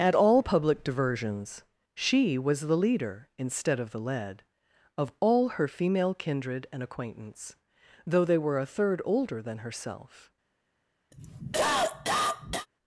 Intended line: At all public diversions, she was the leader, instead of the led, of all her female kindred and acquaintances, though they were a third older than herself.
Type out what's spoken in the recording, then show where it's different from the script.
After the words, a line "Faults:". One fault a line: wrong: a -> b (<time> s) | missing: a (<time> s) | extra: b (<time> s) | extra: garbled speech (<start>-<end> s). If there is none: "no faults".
At all public diversions, she was the leader, instead of the led, of all her female kindred and acquaintance, though they were a third older than herself.
Faults:
wrong: acquaintances -> acquaintance (6.8 s)